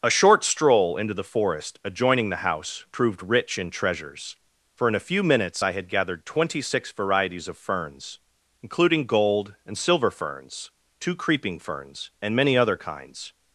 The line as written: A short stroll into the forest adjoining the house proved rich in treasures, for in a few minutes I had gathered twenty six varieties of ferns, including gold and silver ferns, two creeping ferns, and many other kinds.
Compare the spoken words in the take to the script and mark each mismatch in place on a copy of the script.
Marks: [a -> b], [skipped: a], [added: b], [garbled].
A short stroll into the forest adjoining the house proved rich in treasures, for in a few minutes I had gathered twenty six varieties of ferns, including gold and silver ferns, two creeping ferns, and many other kinds.